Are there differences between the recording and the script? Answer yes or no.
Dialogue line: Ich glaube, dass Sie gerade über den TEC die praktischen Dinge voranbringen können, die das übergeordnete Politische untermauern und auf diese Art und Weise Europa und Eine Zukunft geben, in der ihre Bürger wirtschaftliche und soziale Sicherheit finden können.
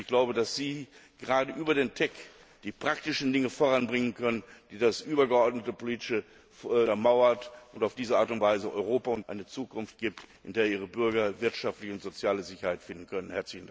no